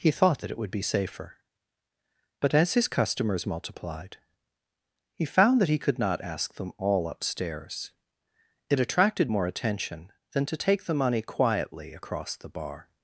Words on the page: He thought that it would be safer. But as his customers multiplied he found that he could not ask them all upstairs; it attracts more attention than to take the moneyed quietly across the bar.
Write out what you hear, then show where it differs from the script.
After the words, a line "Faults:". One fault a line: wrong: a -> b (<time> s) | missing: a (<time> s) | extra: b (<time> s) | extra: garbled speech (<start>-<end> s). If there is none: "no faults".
He thought that it would be safer. But as his customers multiplied he found that he could not ask them all upstairs; it attracted more attention than to take the money quietly across the bar.
Faults:
wrong: attracts -> attracted (8.8 s)
wrong: moneyed -> money (10.9 s)